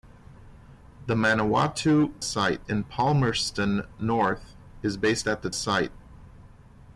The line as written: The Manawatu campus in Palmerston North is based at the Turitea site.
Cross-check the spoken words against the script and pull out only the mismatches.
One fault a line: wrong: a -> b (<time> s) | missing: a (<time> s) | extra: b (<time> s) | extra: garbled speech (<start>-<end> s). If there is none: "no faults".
wrong: campus -> site (2.2 s)
missing: Turitea (5.5 s)